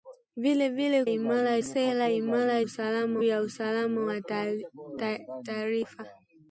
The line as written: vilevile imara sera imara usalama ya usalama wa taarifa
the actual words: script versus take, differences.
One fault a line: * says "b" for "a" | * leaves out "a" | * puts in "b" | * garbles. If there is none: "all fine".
all fine